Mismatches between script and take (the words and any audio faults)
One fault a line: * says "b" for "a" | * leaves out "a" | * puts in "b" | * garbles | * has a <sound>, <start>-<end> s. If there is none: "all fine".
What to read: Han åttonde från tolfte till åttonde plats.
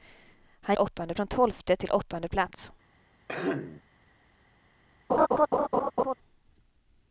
* has a throat clearing, 3.3-3.8 s
* has a laugh, 5.1-6.1 s